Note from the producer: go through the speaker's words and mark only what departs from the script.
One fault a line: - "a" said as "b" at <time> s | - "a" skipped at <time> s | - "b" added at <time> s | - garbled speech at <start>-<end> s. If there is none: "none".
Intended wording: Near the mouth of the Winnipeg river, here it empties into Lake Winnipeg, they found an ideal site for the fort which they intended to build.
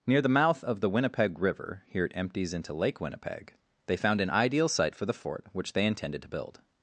none